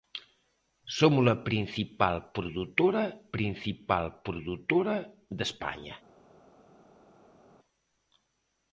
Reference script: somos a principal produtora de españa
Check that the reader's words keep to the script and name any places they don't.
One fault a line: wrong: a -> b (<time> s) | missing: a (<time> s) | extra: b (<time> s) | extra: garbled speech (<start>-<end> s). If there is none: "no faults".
extra: principal produtora (3.3 s)